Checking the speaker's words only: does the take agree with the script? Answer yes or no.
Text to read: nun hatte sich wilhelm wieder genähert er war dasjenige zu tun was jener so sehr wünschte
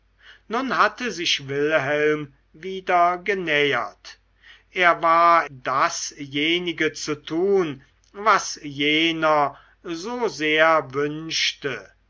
yes